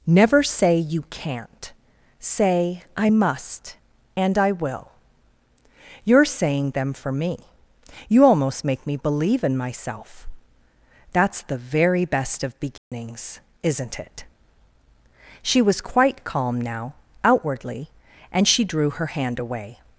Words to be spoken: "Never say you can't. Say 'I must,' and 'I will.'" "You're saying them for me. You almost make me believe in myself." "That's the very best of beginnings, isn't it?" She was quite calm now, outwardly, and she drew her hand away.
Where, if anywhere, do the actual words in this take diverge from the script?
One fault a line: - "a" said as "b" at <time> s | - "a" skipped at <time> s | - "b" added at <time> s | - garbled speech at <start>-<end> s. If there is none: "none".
none